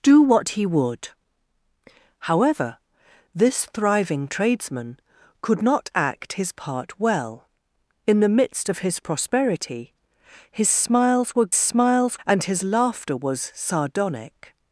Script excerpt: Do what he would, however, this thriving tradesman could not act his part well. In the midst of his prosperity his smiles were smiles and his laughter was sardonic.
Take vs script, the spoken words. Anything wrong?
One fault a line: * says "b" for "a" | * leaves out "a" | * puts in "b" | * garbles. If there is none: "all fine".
all fine